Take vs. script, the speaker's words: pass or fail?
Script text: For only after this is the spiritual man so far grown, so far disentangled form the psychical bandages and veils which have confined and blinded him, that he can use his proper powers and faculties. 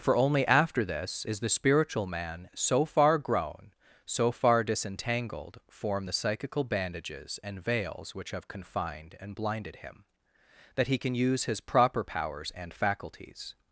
pass